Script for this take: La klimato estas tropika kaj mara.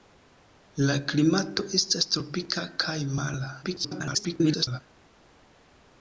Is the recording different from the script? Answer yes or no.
yes